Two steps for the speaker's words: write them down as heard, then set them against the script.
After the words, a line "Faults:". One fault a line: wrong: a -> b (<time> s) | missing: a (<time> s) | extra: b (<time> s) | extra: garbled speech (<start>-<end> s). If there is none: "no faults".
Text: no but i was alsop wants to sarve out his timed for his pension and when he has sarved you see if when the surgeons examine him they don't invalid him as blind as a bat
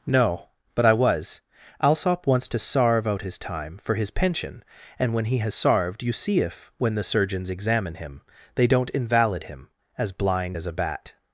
no but i was alsop wants to sarve out his time for his pension and when he has sarved you see if when the surgeons examine him they don't invalid him as blind as a bat
Faults:
wrong: timed -> time (3.4 s)